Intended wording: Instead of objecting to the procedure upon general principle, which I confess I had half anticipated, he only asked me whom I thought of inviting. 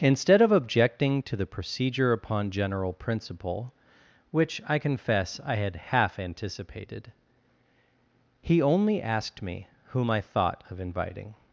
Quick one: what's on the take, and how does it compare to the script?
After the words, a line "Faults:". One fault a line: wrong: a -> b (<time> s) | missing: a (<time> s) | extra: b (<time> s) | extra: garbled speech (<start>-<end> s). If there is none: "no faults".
Instead of objecting to the procedure upon general principle, which I confess I had half anticipated, he only asked me whom I thought of inviting.
Faults:
no faults